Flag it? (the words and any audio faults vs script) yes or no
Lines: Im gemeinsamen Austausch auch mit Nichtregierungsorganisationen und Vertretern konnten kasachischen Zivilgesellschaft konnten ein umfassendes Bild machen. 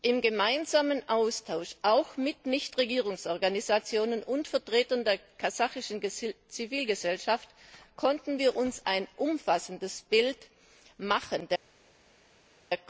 yes